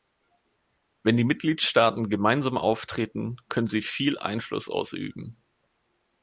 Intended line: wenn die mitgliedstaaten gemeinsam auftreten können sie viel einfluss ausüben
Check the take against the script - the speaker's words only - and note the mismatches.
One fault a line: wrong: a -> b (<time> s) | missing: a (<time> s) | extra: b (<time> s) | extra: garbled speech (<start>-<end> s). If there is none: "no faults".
no faults